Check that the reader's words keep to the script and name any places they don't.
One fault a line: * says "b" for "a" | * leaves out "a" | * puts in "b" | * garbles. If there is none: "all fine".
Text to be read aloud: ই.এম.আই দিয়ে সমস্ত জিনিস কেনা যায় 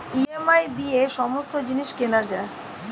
all fine